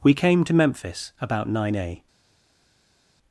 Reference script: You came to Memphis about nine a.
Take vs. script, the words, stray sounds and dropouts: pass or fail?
fail